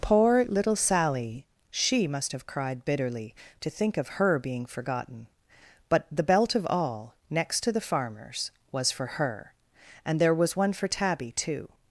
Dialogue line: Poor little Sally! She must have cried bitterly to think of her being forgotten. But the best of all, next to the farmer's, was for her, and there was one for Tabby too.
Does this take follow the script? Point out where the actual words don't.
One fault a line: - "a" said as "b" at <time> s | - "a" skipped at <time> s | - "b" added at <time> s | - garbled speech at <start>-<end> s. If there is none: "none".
- "best" said as "belt" at 6.2 s